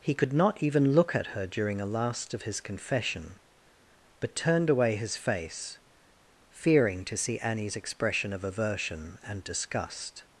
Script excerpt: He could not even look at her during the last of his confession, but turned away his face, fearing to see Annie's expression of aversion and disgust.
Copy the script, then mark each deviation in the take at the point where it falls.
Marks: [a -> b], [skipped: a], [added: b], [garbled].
He could not even look at her during [the -> a] last of his confession, but turned away his face, fearing to see Annie's expression of aversion and disgust.